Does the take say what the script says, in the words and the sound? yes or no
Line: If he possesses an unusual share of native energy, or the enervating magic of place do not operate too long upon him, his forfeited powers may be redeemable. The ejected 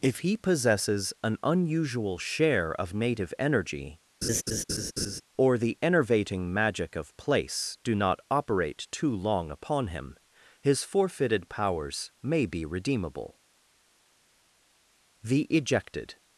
no